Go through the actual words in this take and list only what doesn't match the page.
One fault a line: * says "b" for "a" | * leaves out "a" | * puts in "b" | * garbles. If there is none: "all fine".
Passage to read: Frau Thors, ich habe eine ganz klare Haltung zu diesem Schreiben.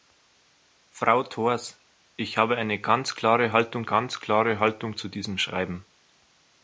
* puts in "ganz klare Haltung"